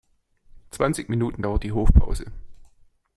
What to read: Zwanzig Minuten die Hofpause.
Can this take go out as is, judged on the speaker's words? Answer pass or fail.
fail